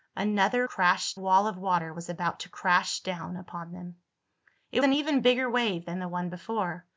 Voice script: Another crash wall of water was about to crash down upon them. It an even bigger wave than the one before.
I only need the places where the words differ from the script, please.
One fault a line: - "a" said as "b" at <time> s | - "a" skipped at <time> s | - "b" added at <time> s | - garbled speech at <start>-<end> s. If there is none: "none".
none